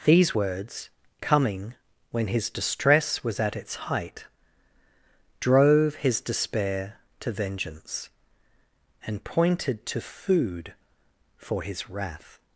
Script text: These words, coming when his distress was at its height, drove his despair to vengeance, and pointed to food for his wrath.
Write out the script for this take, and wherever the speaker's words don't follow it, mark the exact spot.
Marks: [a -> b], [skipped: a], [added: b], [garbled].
These words, coming when his distress was at its height, drove his despair to vengeance, and pointed to food for his wrath.